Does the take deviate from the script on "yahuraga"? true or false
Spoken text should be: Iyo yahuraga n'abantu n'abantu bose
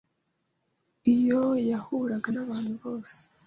false